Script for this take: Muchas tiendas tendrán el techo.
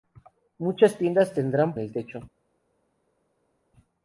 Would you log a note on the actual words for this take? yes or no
no